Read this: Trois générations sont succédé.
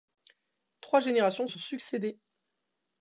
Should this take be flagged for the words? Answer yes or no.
no